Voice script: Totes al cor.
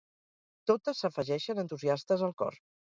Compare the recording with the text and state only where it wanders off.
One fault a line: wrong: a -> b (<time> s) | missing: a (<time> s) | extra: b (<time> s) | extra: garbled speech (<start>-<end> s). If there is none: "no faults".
extra: s'afegeixen entusiastes (1.1 s)